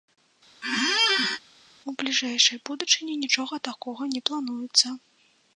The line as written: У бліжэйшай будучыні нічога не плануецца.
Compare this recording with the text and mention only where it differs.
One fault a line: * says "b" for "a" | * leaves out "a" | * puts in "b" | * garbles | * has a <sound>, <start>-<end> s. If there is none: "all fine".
* has a squeak, 0.6-1.4 s
* puts in "такога"